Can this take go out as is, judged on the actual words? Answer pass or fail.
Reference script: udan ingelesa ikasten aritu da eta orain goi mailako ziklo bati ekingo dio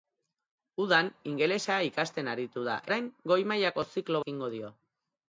fail